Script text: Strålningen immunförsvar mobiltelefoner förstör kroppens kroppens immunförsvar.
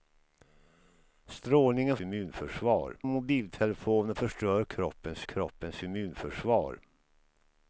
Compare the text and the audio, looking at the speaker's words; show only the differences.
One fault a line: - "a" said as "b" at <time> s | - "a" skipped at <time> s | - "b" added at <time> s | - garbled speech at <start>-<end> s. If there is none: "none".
none